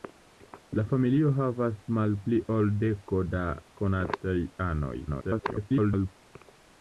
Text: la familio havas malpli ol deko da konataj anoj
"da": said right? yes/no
yes